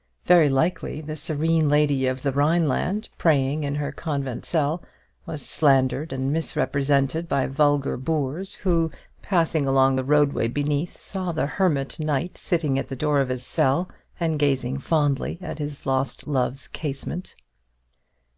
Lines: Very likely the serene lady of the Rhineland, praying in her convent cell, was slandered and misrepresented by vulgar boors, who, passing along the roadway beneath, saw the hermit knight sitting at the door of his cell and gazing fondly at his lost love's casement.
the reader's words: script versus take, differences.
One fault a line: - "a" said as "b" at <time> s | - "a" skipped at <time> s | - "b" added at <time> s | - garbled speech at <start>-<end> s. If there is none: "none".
none